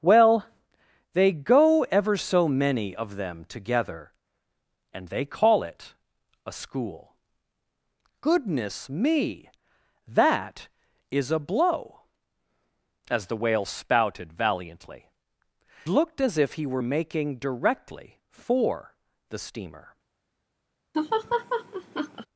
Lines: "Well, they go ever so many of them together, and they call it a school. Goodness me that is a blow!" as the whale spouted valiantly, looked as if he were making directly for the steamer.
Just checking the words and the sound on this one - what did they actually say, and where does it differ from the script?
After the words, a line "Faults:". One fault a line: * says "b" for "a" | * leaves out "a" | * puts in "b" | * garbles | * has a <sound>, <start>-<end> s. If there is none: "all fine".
"Well, they go ever so many of them together, and they call it a school. Goodness me that is a blow!" as the whale spouted valiantly, looked as if he were making directly for the steamer.
Faults:
* has a laugh, 20.9-22.3 s